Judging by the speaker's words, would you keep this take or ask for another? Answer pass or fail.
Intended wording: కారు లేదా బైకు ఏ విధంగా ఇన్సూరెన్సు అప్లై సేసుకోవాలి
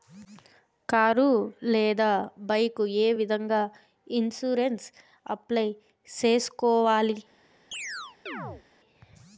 pass